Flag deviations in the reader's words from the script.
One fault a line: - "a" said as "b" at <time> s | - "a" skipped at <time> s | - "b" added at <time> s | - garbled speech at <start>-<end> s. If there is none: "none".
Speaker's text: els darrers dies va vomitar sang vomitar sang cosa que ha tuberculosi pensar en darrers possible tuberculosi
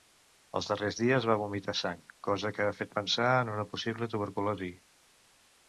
- "vomitar sang" skipped at 2.0 s
- "tuberculosi" said as "fet" at 2.8 s
- "darrers" said as "una" at 3.6 s